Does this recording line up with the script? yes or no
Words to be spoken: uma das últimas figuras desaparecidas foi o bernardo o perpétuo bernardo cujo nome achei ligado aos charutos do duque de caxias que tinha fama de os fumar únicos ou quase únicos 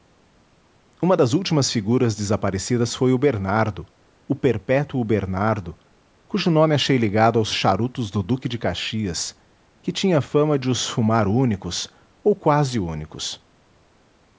yes